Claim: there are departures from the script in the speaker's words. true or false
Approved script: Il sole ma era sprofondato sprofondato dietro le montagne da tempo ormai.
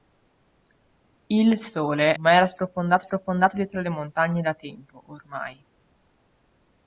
false